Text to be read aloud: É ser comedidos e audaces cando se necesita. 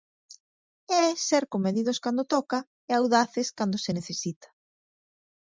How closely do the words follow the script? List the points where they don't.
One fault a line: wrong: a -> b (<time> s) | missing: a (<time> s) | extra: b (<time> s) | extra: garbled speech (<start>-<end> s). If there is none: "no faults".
extra: cando toca (2.0 s)